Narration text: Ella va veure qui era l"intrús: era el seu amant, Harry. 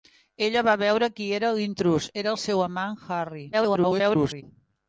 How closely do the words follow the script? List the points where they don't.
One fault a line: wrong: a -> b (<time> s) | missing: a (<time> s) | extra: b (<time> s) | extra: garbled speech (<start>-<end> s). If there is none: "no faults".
extra: garbled speech (3.5-4.4 s)